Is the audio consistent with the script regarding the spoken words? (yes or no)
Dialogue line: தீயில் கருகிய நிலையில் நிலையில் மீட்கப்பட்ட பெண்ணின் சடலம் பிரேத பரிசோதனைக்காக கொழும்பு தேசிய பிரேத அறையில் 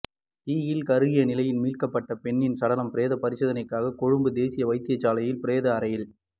no